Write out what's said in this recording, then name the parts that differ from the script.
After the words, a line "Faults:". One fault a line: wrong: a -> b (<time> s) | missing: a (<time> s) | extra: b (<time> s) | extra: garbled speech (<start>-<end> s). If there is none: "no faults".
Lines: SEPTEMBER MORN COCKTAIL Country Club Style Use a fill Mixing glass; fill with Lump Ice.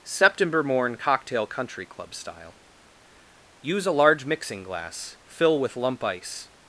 SEPTEMBER MORN COCKTAIL Country Club Style Use a large Mixing glass; fill with Lump Ice.
Faults:
wrong: fill -> large (3.9 s)